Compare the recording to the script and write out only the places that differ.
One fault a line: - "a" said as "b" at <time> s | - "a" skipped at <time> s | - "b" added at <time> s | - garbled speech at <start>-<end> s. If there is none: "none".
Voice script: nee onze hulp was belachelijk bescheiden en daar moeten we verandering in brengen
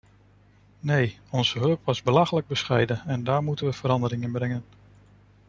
none